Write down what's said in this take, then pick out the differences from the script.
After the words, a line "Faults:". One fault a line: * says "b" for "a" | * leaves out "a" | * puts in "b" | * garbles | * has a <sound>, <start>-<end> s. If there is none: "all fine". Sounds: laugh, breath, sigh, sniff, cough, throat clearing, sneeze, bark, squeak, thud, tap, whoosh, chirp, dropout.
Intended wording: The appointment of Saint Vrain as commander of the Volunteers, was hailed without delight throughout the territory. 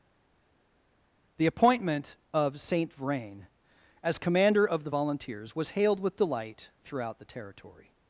The appointment of Saint Vrain as commander of the Volunteers, was hailed with delight throughout the territory.
Faults:
* says "with" for "without"